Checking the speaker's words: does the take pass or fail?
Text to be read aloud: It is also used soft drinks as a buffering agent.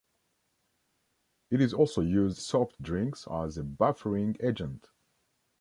pass